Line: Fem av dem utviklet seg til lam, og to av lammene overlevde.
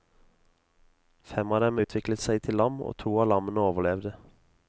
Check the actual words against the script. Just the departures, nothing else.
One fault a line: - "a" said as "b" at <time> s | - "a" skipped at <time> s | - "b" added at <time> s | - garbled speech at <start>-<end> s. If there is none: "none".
none